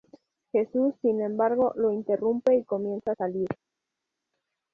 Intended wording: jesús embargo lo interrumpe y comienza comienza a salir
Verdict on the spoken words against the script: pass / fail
fail